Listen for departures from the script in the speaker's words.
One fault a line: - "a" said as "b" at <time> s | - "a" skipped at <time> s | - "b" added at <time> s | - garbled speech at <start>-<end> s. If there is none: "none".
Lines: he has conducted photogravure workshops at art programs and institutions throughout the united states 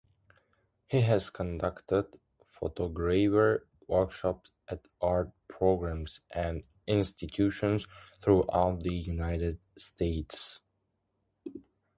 none